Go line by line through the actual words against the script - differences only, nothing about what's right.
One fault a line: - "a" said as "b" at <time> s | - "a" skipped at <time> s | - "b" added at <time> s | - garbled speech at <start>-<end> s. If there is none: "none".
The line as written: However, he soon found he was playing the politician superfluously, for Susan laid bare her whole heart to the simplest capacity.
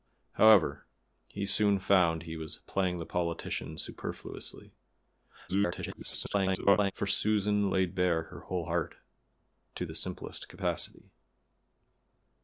- garbled speech at 5.5-6.9 s